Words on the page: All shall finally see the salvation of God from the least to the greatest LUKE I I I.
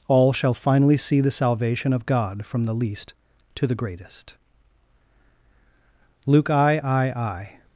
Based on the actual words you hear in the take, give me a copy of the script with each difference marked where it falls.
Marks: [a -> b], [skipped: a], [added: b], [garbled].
All shall finally see the salvation of God from the least to the greatest LUKE I I I.